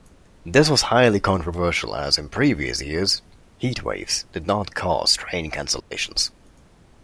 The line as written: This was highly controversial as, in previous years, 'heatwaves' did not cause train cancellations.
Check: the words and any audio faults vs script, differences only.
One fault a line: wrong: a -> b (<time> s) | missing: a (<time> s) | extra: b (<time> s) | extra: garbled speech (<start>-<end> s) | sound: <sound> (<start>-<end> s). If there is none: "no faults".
sound: dropout (5.8-5.9 s)